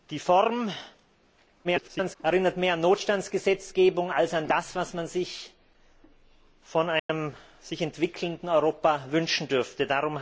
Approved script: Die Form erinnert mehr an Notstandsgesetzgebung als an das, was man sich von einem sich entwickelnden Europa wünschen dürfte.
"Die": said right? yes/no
yes